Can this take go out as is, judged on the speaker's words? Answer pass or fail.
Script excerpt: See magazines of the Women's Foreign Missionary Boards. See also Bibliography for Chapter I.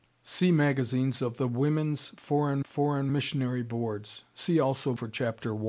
fail